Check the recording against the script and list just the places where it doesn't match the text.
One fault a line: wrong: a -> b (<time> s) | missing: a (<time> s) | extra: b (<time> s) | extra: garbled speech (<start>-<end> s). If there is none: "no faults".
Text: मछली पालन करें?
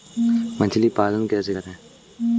extra: कैसे (1.3 s)